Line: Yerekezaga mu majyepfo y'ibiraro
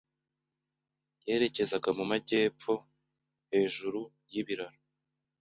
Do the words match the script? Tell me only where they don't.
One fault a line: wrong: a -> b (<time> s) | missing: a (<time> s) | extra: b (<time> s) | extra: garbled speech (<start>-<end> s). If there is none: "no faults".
extra: hejuru (3.5 s)